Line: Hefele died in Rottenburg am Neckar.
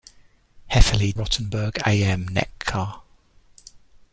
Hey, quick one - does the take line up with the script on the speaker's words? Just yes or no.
no